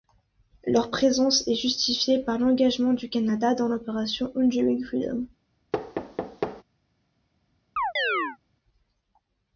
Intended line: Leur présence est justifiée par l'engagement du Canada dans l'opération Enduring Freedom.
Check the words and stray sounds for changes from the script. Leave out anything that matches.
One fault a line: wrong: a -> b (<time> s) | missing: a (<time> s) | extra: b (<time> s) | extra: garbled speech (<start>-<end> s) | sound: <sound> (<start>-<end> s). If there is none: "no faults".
sound: thud (5.7-6.6 s)
sound: chirp (7.8-8.4 s)